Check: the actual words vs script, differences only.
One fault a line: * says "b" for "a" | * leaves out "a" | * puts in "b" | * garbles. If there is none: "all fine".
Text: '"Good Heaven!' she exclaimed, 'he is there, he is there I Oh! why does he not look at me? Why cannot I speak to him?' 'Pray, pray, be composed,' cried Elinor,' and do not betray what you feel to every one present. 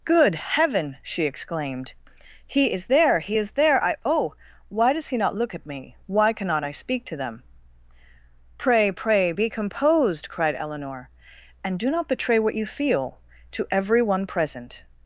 * says "them" for "him"